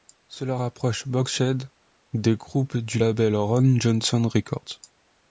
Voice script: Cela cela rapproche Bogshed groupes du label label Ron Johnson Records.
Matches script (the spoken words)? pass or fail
fail